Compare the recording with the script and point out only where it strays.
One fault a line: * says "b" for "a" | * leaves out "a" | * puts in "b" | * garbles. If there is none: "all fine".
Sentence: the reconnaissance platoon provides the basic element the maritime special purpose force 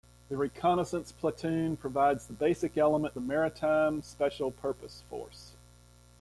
all fine